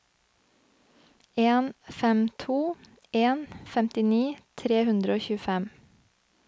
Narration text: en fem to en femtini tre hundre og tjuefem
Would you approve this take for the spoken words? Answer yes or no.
yes